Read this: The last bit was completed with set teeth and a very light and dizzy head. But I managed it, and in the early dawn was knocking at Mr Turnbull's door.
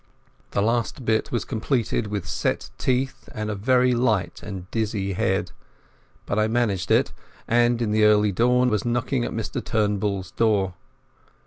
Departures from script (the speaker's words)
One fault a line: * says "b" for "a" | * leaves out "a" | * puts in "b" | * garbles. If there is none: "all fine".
all fine